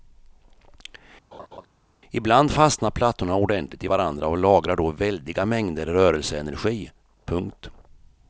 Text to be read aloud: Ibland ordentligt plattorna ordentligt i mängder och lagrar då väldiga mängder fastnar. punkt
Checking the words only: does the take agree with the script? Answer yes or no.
no